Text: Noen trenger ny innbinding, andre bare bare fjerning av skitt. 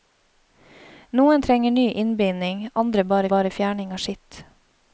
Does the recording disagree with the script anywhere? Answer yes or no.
no